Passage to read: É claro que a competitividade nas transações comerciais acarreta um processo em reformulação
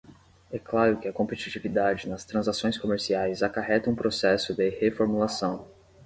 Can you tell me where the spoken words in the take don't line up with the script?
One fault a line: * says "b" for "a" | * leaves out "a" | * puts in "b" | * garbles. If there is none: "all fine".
* says "de" for "em"